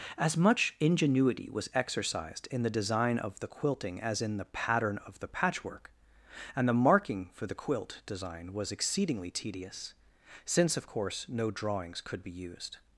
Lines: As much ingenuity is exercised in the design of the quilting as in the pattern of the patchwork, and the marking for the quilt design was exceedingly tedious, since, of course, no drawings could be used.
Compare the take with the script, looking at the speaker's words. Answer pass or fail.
fail